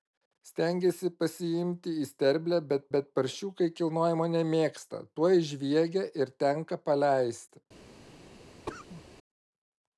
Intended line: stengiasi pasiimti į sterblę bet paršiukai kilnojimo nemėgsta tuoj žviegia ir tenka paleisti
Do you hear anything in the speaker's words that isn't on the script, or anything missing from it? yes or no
yes